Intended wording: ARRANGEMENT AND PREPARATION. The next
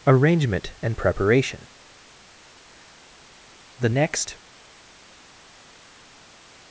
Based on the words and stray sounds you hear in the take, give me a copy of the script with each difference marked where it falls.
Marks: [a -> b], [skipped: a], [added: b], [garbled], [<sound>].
ARRANGEMENT AND PREPARATION. The next